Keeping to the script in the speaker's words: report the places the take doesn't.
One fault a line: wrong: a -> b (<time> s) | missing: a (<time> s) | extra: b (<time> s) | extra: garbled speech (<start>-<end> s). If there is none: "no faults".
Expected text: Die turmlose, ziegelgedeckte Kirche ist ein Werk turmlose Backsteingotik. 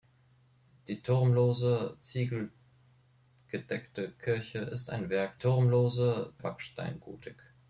no faults